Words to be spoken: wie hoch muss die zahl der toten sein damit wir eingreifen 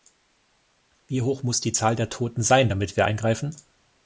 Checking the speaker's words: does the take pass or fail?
pass